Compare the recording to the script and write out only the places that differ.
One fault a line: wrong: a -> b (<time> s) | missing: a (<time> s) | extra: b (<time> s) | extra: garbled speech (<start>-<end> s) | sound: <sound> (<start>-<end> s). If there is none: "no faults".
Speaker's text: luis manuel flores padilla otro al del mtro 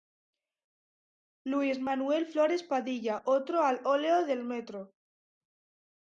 extra: óleo (3.8 s)